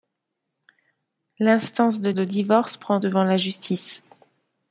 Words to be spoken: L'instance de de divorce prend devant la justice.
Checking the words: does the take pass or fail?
pass